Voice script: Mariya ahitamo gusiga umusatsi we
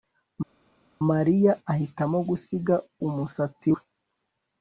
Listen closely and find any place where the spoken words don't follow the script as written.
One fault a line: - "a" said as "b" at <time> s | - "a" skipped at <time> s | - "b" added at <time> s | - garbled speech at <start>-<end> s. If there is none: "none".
none